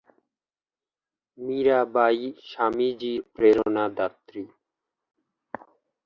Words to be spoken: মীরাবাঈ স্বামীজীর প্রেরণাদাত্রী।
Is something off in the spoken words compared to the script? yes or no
no